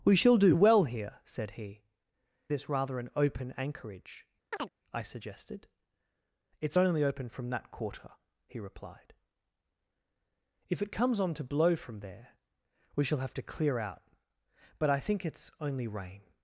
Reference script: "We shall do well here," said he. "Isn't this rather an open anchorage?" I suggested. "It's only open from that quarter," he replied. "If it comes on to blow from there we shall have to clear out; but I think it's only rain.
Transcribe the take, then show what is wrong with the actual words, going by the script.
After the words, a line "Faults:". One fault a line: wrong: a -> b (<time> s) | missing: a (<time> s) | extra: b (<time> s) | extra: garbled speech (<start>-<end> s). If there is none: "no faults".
"We shall do well here," said he. "This rather an open anchorage?" I suggested. "It's only open from that quarter," he replied. "If it comes on to blow from there we shall have to clear out; but I think it's only rain.
Faults:
missing: Isn't (1.8 s)